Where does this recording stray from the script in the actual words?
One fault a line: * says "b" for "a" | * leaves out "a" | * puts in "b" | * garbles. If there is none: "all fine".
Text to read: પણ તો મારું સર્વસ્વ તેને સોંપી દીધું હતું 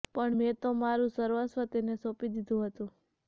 * puts in "મેં"